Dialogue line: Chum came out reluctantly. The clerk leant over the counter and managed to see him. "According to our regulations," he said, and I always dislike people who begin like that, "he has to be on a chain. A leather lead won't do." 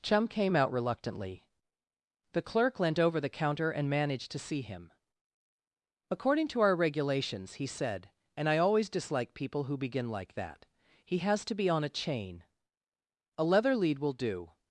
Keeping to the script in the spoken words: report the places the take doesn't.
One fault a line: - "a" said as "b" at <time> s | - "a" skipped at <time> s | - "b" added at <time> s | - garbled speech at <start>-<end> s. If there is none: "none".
- "won't" said as "will" at 14.0 s